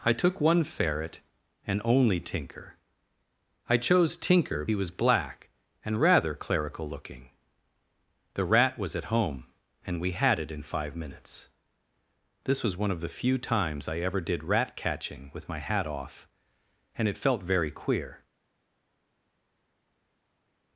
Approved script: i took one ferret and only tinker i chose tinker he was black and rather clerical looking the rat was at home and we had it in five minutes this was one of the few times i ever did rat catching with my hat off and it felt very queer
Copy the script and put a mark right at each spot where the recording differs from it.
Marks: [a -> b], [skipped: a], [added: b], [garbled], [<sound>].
i took one ferret and only tinker i chose tinker he was black and rather clerical looking the rat was at home and we had it in five minutes this was one of the few times i ever did rat catching with my hat off and it felt very queer